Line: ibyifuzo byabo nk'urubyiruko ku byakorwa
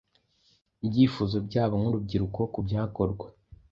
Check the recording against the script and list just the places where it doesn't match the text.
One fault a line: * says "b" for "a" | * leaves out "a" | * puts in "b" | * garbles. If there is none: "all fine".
all fine